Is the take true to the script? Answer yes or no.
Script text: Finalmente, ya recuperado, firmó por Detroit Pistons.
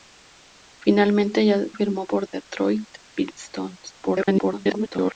no